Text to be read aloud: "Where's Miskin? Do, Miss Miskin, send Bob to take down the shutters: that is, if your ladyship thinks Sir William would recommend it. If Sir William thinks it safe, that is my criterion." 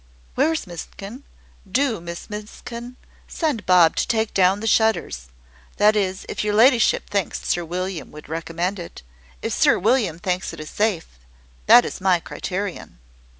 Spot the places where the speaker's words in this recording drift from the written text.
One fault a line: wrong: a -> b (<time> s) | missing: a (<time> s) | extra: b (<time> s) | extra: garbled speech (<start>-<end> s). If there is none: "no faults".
no faults